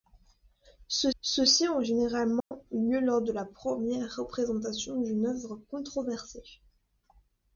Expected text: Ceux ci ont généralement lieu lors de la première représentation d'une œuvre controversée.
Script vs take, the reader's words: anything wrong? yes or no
yes